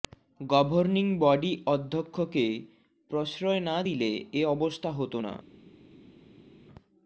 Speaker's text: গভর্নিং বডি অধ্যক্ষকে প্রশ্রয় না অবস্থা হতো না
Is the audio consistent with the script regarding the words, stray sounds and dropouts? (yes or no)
no